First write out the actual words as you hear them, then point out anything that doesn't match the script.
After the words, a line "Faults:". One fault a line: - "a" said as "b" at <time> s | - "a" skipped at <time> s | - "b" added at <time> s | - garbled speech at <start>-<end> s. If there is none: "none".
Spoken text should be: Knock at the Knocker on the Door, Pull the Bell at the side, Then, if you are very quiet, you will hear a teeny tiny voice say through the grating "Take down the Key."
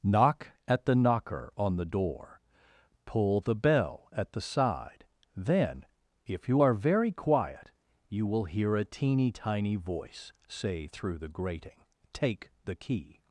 Knock at the Knocker on the Door, Pull the Bell at the side, Then, if you are very quiet, you will hear a teeny tiny voice say through the grating "Take the Key."
Faults:
- "down" skipped at 12.5 s